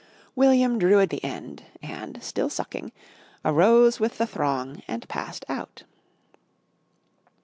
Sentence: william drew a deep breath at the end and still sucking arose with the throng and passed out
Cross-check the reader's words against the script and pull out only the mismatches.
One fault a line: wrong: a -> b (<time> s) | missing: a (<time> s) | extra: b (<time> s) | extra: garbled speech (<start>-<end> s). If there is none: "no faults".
missing: deep breath at (1.1 s)